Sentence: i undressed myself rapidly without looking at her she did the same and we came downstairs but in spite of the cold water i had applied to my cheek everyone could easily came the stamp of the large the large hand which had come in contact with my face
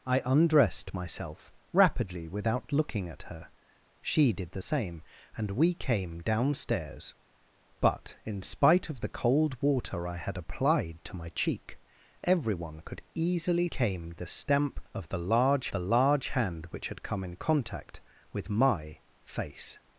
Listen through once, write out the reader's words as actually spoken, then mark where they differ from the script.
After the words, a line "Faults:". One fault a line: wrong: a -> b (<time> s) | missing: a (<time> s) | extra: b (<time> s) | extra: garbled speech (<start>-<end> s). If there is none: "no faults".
i undressed myself rapidly without looking at her she did the same and we came downstairs but in spite of the cold water i had applied to my cheek everyone could easily came the stamp of the large the large hand which had come in contact with my face
Faults:
no faults